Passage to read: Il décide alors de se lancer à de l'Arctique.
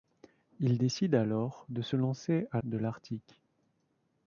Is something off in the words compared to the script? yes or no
no